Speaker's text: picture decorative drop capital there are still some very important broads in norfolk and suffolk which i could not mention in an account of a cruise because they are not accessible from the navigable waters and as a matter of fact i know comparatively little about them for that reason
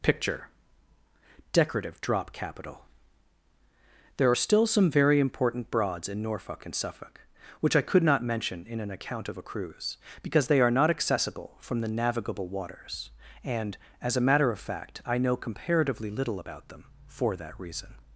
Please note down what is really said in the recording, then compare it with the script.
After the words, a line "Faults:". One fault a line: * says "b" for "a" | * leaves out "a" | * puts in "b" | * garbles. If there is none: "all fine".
picture decorative drop capital there are still some very important broads in norfolk and suffolk which i could not mention in an account of a cruise because they are not accessible from the navigable waters and as a matter of fact i know comparatively little about them for that reason
Faults:
all fine